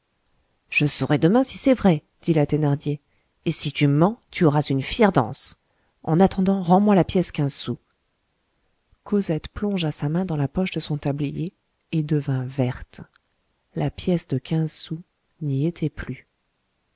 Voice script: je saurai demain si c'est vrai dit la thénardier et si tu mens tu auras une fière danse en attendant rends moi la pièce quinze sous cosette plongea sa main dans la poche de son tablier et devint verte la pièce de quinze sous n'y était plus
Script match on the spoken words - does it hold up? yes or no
yes